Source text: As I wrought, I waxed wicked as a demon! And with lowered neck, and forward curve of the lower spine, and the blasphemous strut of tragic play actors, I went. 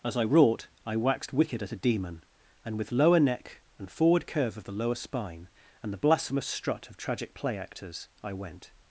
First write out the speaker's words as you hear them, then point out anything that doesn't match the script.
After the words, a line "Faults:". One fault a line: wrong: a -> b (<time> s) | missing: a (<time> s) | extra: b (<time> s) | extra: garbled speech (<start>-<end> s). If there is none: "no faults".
As I wrought, I waxed wicked at a demon! And with lower neck, and forward curve of the lower spine, and the blasphemous strut of tragic play actors, I went.
Faults:
wrong: as -> at (1.6 s)
wrong: lowered -> lower (2.9 s)